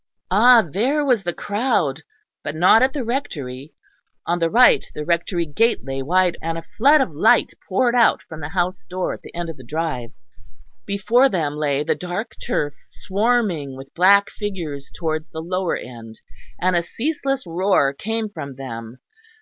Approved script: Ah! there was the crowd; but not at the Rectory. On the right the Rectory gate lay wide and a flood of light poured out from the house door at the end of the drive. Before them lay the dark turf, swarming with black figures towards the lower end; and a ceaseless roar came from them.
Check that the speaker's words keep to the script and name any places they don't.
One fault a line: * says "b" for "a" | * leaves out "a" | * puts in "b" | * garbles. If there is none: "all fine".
all fine